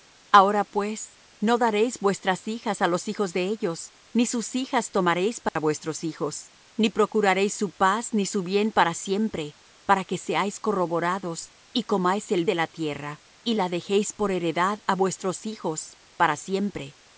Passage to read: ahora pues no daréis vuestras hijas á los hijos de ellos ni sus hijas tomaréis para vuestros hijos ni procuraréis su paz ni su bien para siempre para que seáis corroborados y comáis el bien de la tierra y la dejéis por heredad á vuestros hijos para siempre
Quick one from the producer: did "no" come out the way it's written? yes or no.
yes